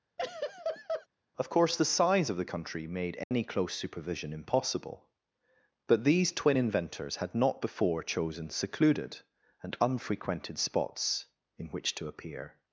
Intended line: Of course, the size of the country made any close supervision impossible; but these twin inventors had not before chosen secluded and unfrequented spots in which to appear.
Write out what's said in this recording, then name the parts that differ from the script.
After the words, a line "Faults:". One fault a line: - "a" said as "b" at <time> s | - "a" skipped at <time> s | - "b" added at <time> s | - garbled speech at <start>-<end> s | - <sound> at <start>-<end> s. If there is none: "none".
Of course, the size of the country made any close supervision impossible; but these twin inventors had not before chosen secluded and unfrequented spots in which to appear.
Faults:
- laugh at 0.2-1.1 s
- dropout at 3.2-3.3 s